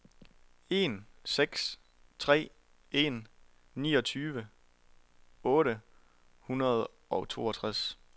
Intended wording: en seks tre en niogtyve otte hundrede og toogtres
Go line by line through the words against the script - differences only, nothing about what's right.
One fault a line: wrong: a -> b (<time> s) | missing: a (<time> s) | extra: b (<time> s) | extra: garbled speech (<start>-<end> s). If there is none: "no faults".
no faults